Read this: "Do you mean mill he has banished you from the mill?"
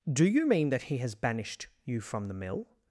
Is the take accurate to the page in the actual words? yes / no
no